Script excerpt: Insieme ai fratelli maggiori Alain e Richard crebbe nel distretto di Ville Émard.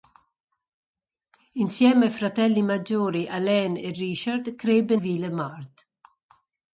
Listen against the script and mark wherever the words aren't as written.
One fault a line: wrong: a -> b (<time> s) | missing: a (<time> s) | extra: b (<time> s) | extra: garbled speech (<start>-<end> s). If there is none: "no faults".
missing: nel distretto di (5.0 s)